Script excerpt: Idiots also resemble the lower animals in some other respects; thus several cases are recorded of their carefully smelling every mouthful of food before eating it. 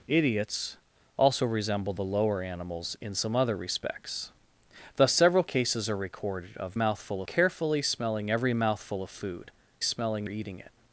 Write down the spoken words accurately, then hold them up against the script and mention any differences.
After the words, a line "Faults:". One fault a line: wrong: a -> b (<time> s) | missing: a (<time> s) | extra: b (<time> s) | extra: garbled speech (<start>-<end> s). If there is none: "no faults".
Idiots also resemble the lower animals in some other respects; thus several cases are recorded of mouthful carefully smelling every mouthful of food smelling eating it.
Faults:
wrong: their -> mouthful (6.7 s)
wrong: before -> smelling (9.8 s)